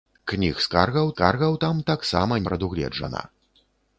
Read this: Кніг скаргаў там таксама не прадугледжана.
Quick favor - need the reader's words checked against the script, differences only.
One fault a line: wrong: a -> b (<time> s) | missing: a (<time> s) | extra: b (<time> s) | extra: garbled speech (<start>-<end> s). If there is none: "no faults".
extra: скаргаў (1.1 s)
missing: не (2.4 s)